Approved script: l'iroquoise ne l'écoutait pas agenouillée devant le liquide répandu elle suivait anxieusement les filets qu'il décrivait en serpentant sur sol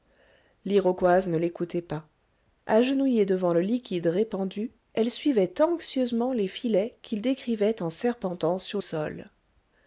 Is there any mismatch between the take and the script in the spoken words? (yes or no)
no